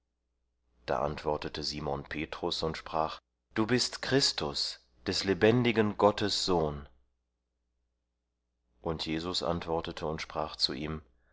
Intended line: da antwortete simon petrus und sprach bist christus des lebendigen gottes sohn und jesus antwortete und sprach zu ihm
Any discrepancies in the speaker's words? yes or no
yes